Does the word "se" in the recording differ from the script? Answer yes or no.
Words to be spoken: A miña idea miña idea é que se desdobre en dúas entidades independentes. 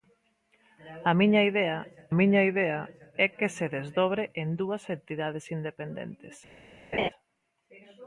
no